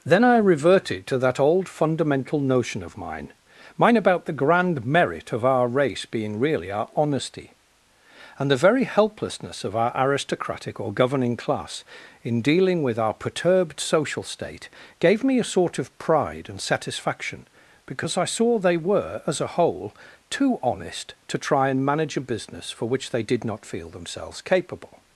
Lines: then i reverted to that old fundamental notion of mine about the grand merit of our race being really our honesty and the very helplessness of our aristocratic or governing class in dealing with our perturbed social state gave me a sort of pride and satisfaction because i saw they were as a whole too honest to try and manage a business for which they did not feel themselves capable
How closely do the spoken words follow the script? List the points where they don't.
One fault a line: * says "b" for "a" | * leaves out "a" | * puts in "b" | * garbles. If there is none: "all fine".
* puts in "mine"